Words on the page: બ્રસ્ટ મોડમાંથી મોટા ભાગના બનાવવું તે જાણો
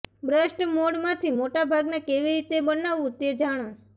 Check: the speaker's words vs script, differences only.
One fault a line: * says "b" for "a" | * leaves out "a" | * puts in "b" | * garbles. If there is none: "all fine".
* puts in "કેવી રીતે"